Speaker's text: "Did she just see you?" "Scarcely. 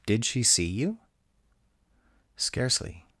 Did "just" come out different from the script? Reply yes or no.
yes